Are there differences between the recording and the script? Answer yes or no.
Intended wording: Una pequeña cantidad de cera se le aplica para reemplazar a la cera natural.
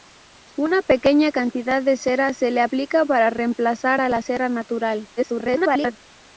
yes